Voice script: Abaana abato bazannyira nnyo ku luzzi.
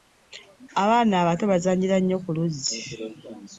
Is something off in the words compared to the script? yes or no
no